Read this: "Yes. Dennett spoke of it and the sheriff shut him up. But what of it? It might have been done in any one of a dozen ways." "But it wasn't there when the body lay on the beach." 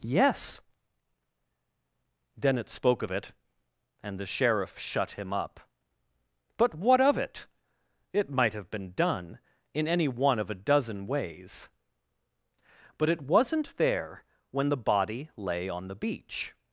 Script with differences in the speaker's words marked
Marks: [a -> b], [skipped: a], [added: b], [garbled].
"Yes. Dennett spoke of it and the sheriff shut him up. But what of it? It might have been done in any one of a dozen ways." "But it wasn't there when the body lay on the beach."